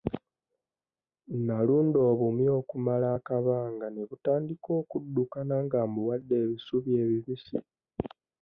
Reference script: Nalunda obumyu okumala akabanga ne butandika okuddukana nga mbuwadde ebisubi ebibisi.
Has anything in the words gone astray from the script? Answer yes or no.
no